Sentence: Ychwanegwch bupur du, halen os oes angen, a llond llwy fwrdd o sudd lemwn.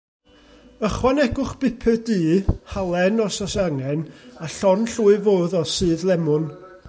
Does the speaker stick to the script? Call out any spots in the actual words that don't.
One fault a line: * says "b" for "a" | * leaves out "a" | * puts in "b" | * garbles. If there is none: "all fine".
all fine